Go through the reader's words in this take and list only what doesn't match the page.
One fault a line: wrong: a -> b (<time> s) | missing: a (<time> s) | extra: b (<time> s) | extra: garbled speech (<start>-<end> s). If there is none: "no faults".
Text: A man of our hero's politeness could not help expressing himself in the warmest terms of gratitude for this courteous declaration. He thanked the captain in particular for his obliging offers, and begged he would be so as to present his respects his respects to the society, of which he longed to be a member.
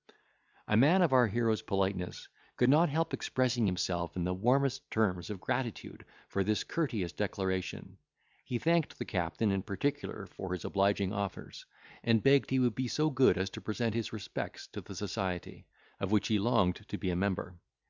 extra: good (13.1 s)
missing: his respects (14.7 s)